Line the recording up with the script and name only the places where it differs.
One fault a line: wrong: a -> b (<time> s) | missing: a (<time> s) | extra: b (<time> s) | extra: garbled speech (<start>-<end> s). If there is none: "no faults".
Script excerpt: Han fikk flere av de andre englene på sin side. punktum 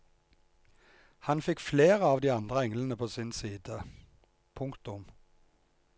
no faults